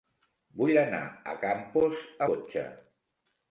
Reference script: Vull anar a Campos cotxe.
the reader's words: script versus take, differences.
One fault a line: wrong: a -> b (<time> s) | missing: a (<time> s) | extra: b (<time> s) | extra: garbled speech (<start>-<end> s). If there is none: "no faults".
no faults